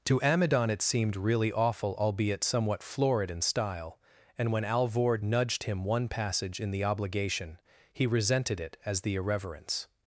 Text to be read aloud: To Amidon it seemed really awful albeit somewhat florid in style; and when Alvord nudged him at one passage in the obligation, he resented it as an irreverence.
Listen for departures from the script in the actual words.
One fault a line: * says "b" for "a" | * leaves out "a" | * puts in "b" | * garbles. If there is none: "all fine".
* leaves out "at"
* says "the" for "an"